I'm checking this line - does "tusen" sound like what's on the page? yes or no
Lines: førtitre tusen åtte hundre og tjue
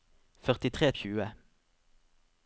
no